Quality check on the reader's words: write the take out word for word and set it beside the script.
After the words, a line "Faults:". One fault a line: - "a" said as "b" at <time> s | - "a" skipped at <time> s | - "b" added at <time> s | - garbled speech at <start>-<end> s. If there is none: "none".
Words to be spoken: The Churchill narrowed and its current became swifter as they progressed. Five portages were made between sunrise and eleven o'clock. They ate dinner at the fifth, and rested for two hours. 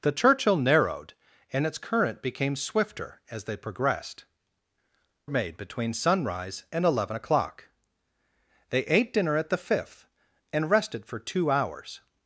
The Churchill narrowed and its current became swifter as they progressed. Made between sunrise and eleven o'clock. They ate dinner at the fifth, and rested for two hours.
Faults:
- "Five portages were" skipped at 4.2 s